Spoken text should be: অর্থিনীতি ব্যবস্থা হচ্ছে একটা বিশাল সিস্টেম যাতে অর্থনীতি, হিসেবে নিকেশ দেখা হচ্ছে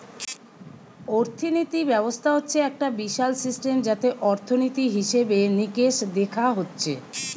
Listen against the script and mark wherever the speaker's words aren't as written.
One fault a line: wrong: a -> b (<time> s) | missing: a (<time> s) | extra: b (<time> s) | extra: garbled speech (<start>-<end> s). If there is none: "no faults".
no faults